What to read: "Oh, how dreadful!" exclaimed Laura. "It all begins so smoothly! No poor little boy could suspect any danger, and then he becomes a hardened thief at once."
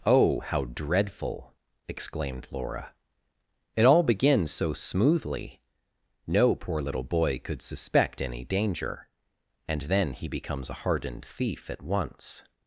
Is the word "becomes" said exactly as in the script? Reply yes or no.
yes